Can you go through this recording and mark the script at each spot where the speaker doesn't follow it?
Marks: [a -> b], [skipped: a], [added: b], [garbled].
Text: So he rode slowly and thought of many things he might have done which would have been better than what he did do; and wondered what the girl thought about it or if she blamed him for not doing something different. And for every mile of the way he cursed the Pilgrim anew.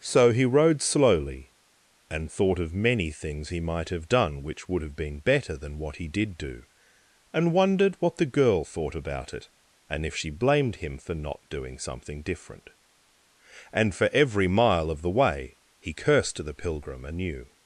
So he rode slowly and thought of many things he might have done which would have been better than what he did do; and wondered what the girl thought about it [or -> and] if she blamed him for not doing something different. And for every mile of the way he cursed the Pilgrim anew.